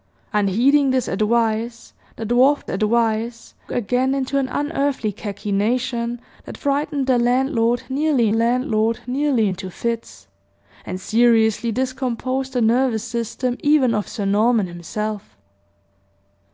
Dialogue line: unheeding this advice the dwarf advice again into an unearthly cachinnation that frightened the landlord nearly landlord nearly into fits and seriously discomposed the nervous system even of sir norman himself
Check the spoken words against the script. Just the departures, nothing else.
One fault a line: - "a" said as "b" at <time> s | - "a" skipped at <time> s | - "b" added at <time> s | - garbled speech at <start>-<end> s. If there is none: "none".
none